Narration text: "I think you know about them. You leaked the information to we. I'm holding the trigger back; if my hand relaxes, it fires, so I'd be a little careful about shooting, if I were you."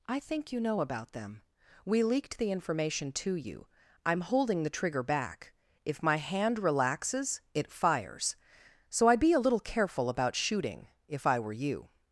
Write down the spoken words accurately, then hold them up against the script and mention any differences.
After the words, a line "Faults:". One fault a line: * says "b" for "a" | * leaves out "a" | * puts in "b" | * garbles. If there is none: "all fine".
"I think you know about them. We leaked the information to you. I'm holding the trigger back; if my hand relaxes, it fires, so I'd be a little careful about shooting, if I were you."
Faults:
* says "We" for "You"
* says "you" for "we"